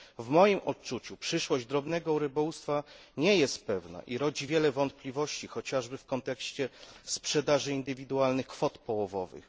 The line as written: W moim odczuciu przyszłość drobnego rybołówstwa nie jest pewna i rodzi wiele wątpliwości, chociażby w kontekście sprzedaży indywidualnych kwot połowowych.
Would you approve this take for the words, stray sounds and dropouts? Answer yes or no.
yes